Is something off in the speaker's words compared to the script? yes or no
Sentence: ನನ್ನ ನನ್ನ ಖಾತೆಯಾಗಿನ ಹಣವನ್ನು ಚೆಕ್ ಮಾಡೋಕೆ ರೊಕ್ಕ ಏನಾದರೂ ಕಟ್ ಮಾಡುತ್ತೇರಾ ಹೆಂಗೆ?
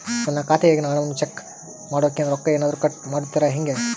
yes